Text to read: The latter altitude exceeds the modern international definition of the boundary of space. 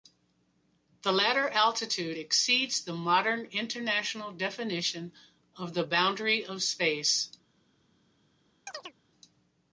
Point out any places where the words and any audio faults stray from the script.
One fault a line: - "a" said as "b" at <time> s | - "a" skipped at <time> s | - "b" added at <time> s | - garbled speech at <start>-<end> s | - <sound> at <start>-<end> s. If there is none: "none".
- chirp at 8.7-8.9 s